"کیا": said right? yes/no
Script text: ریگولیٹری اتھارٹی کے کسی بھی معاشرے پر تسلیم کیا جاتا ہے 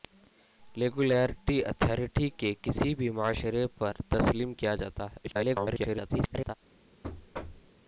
yes